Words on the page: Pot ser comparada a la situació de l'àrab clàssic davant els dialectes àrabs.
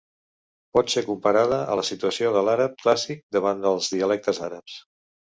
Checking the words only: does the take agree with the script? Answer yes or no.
yes